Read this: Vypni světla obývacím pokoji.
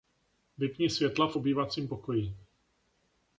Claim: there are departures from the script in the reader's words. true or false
true